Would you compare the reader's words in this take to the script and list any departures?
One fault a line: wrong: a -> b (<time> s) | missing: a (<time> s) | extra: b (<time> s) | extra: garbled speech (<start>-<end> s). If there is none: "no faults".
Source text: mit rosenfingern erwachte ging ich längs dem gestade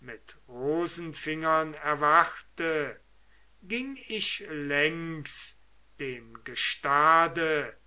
no faults